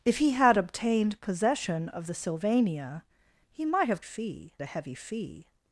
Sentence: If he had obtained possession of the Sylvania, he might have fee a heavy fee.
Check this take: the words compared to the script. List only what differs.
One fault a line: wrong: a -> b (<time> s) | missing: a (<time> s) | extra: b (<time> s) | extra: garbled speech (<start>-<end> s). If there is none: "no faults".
no faults